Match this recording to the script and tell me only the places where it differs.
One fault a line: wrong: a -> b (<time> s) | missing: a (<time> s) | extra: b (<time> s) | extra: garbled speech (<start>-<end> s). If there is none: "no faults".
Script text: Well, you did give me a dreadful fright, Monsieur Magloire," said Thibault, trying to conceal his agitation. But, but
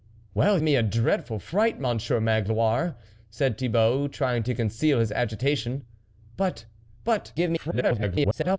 missing: you did give (0.6 s)
extra: garbled speech (7.3-8.6 s)